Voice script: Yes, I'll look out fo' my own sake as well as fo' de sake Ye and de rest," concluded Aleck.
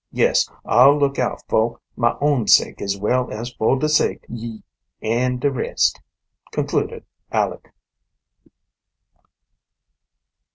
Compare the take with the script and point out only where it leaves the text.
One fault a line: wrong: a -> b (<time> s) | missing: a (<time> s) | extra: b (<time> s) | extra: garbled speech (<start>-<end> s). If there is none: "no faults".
no faults